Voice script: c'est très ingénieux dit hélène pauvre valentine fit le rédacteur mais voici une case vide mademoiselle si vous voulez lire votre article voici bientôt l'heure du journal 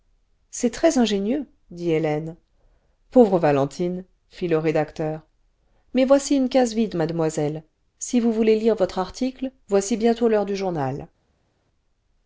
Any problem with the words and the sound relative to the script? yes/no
no